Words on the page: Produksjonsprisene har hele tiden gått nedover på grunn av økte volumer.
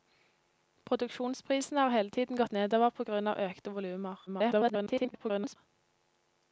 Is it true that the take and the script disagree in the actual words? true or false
true